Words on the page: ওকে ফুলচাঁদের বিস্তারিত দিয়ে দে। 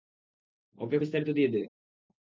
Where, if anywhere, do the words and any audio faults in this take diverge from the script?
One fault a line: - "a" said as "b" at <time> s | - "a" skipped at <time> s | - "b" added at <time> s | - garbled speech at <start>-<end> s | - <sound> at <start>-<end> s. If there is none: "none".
- "ফুলচাঁদের" skipped at 1.0 s